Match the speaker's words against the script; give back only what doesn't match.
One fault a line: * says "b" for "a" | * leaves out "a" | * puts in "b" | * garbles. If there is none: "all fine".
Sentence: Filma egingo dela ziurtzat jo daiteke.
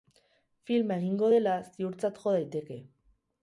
all fine